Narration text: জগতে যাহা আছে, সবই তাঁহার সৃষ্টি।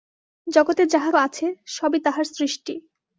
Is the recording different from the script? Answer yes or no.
no